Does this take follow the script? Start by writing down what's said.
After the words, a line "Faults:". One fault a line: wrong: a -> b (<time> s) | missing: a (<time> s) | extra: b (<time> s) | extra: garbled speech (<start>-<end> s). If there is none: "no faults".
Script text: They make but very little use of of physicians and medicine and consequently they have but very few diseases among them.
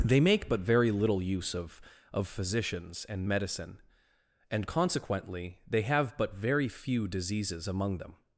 They make but very little use of of physicians and medicine and consequently they have but very few diseases among them.
Faults:
no faults